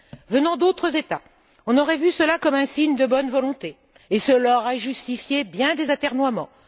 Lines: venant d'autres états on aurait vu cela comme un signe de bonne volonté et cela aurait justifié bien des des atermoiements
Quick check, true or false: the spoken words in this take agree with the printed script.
false